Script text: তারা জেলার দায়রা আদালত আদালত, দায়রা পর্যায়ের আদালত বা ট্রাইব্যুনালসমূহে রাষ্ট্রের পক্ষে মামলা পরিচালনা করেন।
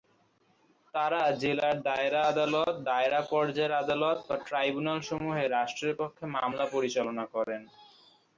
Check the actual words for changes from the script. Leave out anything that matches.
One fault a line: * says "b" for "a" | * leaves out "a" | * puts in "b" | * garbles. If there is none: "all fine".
* leaves out "আদালত"